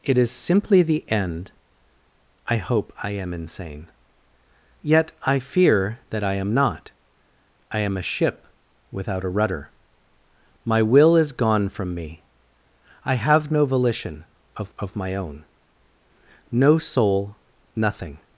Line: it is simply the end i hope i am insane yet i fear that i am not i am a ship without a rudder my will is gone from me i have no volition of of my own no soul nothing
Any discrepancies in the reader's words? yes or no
no